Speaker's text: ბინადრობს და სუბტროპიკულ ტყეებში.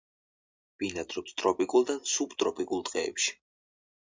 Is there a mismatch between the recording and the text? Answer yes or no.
yes